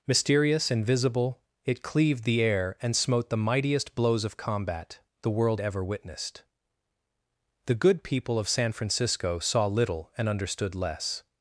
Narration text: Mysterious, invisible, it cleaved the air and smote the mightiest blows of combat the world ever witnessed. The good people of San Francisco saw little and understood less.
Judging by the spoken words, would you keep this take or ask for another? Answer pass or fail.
pass